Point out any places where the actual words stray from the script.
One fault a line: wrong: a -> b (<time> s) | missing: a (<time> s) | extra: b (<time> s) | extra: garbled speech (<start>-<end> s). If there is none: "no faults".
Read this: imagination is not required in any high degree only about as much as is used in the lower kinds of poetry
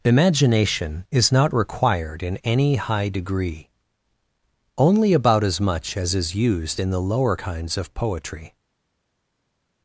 no faults